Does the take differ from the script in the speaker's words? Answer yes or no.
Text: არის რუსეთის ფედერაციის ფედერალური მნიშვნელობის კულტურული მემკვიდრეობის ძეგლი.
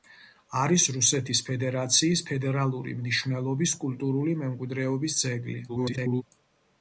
yes